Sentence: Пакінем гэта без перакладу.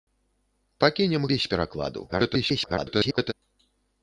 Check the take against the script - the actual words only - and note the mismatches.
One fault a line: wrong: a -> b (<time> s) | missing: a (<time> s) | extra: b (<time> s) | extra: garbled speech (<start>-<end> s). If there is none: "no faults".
missing: гэта (1.3 s)
extra: garbled speech (2.1-3.3 s)